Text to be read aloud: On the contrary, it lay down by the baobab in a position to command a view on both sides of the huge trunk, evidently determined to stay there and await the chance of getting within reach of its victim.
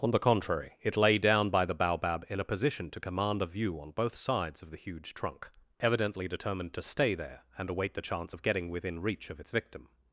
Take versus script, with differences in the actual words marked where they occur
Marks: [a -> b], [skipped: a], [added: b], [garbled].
On the contrary, it lay down by the baobab in a position to command a view on both sides of the huge trunk, evidently determined to stay there and await the chance of getting within reach of its victim.